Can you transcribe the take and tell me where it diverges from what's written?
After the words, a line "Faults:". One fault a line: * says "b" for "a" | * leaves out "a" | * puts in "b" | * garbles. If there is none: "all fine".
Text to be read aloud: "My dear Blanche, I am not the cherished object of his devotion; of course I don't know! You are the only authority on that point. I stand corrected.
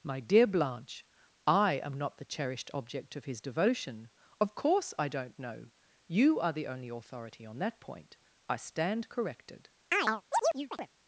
"My dear Blanche, I am not the cherished object of his devotion; of course I don't know! You are the only authority on that point. I stand corrected.
Faults:
all fine